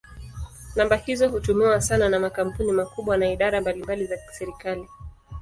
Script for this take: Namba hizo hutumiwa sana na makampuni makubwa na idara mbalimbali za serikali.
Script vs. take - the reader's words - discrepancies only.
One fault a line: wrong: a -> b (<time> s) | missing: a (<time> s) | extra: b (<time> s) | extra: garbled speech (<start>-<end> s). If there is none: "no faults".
no faults